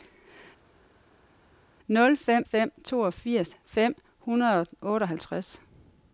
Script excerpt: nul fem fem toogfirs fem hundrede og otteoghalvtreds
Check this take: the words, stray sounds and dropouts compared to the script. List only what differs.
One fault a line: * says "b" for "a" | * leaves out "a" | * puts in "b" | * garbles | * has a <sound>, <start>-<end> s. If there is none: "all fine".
all fine